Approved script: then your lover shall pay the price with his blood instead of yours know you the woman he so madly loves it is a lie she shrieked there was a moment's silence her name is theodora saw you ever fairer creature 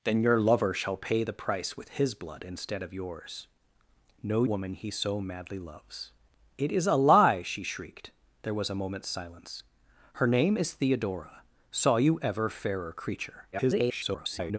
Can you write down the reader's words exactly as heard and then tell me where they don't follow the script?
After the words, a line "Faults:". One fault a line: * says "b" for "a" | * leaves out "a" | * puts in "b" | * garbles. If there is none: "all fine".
then your lover shall pay the price with his blood instead of yours know woman he so madly loves it is a lie she shrieked there was a moment's silence her name is theodora saw you ever fairer creature [garbled]
Faults:
* leaves out "you the"
* garbles